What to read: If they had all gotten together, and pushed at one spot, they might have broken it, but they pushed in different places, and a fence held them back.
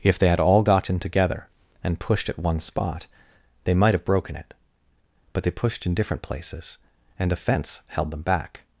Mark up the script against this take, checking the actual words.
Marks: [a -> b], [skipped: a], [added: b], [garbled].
If they had all gotten together, and pushed at one spot, they might have broken it, but they pushed in different places, and a fence held them back.